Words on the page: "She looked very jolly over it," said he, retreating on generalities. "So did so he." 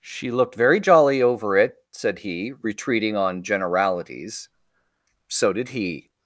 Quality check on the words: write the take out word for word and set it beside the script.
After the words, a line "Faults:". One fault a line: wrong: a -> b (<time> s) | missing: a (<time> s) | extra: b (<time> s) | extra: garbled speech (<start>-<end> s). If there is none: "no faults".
"She looked very jolly over it," said he, retreating on generalities. "So did he."
Faults:
missing: so (5.7 s)